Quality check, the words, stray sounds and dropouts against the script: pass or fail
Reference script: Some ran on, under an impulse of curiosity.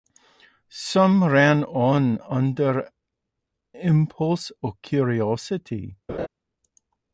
fail